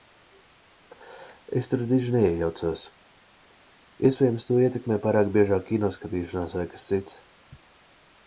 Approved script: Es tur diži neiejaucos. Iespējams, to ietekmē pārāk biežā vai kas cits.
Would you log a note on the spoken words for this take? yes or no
yes